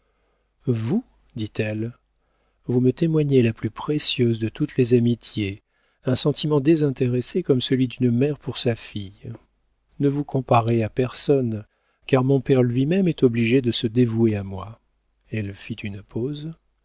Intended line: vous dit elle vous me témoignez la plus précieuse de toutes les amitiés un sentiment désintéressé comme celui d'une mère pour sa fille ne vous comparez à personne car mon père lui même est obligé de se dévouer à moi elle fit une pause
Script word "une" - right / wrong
right